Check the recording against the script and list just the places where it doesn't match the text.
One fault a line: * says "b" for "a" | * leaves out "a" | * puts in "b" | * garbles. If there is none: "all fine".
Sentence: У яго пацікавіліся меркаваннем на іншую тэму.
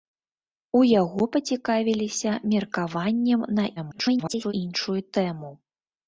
* garbles